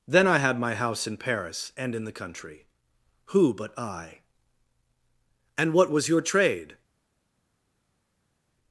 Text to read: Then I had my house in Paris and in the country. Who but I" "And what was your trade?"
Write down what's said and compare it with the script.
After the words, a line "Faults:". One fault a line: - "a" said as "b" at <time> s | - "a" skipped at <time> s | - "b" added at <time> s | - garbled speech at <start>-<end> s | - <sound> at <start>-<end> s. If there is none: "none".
Then I had my house in Paris and in the country. Who but I" "And what was your trade?"
Faults:
none